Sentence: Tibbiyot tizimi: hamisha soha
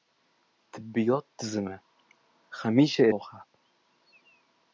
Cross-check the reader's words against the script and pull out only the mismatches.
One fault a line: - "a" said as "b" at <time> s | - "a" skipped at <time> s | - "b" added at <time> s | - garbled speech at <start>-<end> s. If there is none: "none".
none